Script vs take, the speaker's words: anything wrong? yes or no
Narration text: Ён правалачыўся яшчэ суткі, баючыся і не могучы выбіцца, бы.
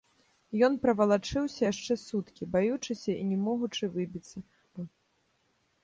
no